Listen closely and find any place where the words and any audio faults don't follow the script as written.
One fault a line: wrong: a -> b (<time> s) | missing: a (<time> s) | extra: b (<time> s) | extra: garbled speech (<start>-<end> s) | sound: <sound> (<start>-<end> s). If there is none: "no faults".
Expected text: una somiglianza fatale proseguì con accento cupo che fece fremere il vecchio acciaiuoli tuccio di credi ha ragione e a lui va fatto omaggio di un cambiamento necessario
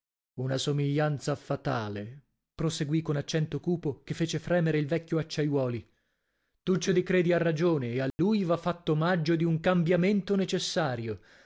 sound: dropout (8.1-8.2 s)